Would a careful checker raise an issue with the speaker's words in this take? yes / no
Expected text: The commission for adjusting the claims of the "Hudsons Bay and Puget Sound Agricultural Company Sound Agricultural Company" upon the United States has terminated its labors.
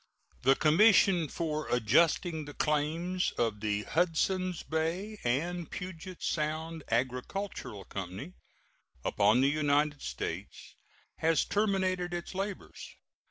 yes